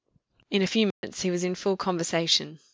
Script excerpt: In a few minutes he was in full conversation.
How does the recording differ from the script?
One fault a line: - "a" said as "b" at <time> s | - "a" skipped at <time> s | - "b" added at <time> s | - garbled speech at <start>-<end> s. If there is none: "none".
none